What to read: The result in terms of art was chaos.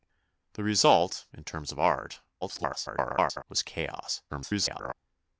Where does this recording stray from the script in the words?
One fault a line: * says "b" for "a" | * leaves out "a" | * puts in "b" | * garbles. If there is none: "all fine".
* garbles
* garbles